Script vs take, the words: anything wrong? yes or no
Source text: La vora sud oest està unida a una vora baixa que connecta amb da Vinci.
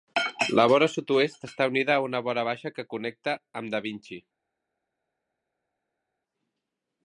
no